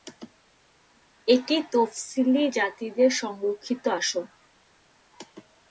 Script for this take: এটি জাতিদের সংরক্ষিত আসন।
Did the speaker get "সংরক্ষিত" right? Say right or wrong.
right